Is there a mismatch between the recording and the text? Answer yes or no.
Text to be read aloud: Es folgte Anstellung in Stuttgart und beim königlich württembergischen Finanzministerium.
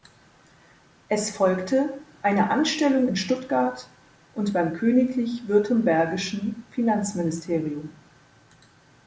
yes